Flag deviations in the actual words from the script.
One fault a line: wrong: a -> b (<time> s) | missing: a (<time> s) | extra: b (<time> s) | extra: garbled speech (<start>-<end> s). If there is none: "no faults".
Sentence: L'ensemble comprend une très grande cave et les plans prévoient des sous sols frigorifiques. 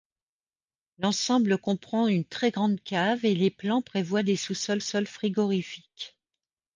extra: sols (4.8 s)